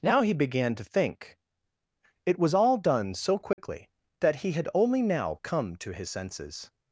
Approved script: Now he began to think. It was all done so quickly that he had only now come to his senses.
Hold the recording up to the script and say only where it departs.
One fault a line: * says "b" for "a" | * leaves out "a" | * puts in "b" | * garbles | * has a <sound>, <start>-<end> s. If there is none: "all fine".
* has a dropout, 3.5-3.6 s